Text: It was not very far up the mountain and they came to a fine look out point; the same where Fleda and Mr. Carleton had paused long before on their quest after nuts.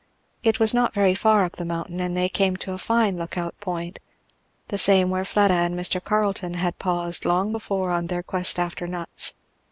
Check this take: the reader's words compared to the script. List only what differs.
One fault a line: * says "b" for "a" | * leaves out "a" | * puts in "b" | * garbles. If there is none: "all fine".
all fine